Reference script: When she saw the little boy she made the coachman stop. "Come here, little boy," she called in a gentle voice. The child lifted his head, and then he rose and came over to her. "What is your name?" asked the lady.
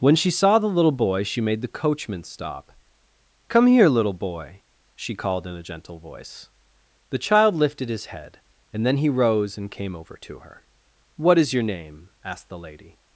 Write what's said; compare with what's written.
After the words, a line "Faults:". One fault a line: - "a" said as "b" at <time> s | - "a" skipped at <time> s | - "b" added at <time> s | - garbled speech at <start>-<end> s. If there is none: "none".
When she saw the little boy she made the coachman stop. "Come here, little boy," she called in a gentle voice. The child lifted his head, and then he rose and came over to her. "What is your name?" asked the lady.
Faults:
none